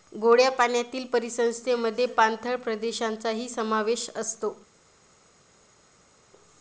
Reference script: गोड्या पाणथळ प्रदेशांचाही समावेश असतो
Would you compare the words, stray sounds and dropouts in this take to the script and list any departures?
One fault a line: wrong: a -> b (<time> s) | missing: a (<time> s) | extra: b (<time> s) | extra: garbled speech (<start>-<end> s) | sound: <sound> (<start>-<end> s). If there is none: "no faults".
extra: पाण्यातील परिसंस्थेमध्ये (0.5 s)